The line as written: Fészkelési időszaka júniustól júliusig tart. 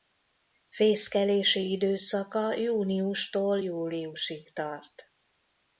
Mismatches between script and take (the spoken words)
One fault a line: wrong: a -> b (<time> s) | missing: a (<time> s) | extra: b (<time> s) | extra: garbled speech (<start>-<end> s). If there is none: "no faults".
no faults